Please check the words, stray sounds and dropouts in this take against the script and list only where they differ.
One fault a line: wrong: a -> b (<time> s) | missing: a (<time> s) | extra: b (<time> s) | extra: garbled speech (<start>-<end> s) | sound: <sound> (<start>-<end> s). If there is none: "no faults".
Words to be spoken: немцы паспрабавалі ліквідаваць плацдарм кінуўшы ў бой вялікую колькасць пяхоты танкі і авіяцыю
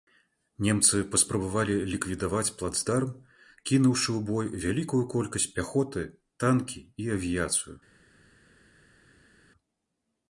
no faults